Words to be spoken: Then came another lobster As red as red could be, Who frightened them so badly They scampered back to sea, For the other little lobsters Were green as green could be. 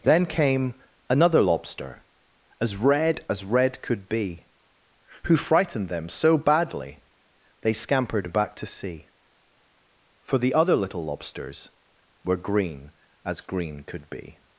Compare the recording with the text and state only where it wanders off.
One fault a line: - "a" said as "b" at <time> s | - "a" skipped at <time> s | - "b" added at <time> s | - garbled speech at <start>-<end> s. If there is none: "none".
none